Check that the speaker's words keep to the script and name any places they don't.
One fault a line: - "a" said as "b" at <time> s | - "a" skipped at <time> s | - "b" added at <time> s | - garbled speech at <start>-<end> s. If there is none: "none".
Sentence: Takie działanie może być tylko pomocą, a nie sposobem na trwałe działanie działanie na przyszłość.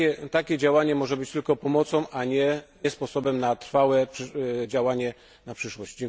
- "działanie" skipped at 5.1 s